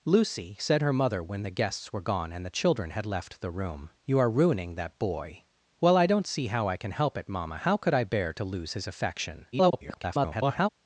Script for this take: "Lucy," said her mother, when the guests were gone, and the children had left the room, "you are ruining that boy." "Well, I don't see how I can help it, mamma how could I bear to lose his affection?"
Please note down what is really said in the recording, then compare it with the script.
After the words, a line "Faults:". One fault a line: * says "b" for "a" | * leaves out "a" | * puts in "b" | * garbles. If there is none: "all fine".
"Lucy," said her mother, when the guests were gone, and the children had left the room, "you are ruining that boy." "Well, I don't see how I can help it, mamma how could I bear to lose his affection?" [garbled]
Faults:
* garbles